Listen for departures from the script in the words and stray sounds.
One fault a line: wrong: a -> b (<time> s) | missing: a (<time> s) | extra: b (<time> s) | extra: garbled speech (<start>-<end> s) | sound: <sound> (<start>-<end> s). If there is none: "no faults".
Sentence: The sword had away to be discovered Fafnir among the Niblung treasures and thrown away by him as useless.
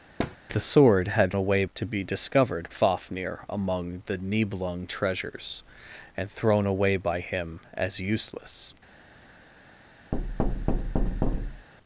sound: thud (0.2-0.4 s)
sound: thud (10.1-11.7 s)